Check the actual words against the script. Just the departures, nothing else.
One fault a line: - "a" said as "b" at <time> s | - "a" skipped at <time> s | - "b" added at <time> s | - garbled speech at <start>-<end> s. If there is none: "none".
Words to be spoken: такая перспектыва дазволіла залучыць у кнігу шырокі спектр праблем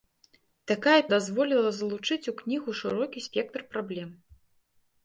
- "перспектыва" skipped at 1.0 s